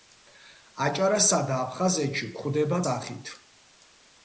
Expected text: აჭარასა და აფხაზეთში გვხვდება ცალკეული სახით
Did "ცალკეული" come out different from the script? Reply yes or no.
yes